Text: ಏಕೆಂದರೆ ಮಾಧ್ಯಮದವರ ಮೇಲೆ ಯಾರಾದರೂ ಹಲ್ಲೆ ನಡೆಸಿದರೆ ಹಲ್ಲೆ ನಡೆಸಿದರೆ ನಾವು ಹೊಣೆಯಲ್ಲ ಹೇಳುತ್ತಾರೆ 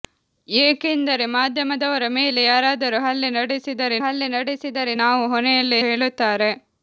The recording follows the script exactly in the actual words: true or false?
true